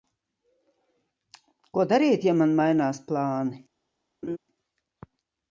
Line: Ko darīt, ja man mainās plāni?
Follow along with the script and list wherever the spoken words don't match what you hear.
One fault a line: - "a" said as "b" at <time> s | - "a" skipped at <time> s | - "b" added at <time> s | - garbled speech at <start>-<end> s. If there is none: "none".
none